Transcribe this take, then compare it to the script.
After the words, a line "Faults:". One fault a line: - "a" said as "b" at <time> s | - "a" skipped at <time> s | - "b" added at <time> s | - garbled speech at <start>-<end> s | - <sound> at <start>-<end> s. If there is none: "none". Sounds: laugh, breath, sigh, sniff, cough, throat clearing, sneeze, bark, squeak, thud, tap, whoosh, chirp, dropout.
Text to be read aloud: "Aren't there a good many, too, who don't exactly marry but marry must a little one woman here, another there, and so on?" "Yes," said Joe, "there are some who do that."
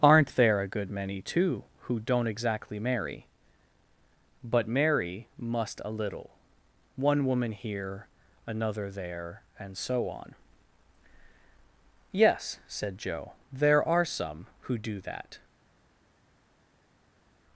"Aren't there a good many, too, who don't exactly marry but marry must a little one woman here, another there, and so on?" "Yes," said Joe, "there are some who do that."
Faults:
none